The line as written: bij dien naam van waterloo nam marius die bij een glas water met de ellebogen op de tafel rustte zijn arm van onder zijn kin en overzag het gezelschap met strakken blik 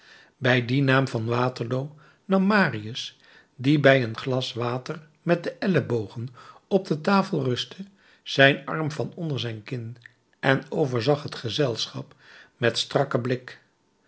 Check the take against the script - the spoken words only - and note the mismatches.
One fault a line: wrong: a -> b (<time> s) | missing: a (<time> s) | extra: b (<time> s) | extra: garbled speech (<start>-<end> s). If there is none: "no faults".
no faults